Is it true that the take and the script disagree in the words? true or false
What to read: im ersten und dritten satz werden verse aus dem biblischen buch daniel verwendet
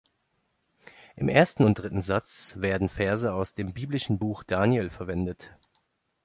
false